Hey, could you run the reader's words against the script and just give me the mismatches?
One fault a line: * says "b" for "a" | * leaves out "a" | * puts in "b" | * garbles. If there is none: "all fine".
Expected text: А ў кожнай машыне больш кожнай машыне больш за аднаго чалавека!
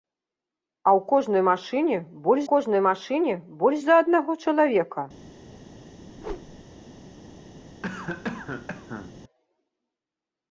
all fine